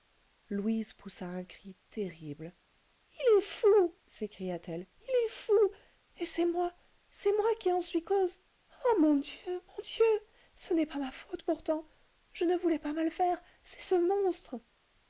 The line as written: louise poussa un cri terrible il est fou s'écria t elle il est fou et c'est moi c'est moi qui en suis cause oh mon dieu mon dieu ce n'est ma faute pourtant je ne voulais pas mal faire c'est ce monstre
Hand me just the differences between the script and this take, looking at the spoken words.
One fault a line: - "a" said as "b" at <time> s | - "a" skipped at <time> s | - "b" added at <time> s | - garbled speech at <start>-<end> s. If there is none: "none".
- "pas" added at 10.9 s